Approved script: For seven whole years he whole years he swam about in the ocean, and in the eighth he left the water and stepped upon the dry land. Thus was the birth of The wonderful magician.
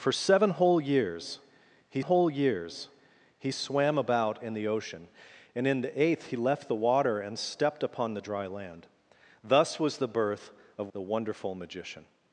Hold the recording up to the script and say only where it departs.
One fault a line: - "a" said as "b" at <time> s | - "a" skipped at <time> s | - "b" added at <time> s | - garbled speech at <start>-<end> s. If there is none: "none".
none